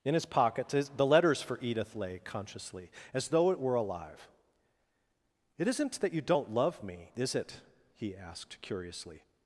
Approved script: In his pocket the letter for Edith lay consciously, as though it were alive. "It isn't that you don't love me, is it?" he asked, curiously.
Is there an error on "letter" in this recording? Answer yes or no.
yes